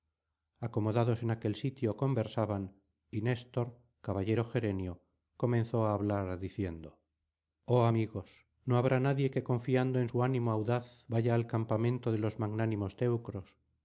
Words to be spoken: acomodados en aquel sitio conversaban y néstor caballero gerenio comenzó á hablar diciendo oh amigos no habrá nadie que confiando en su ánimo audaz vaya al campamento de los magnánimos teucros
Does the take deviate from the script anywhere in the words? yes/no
no